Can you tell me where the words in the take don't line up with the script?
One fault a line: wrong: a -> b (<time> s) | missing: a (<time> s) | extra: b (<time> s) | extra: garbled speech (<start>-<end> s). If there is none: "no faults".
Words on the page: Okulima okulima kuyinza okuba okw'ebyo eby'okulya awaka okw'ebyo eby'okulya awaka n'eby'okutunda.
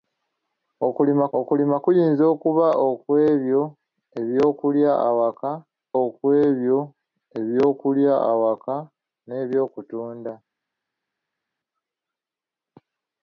no faults